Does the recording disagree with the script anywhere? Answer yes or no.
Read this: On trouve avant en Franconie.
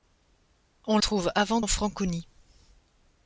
no